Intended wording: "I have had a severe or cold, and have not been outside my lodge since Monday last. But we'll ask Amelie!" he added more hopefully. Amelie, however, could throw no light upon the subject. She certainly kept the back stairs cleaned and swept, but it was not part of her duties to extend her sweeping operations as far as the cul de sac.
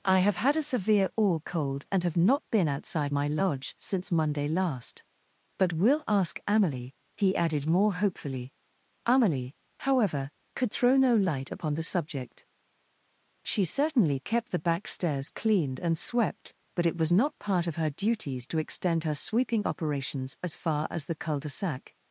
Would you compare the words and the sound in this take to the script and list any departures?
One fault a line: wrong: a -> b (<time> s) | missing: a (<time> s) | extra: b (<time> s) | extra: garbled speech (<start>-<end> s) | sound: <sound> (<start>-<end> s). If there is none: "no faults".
no faults